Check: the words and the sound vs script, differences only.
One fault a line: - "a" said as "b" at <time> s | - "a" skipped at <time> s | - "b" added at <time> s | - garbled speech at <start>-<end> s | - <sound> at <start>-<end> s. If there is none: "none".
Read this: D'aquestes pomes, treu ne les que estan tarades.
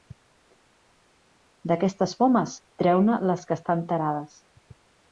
none